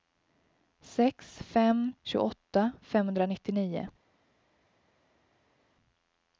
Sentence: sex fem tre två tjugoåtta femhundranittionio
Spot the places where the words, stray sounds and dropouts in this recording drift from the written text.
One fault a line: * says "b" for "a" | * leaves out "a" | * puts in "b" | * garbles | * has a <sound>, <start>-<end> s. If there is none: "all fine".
* leaves out "tre två"